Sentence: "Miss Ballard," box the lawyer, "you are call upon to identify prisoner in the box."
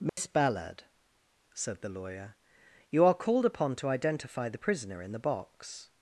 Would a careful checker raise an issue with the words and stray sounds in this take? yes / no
yes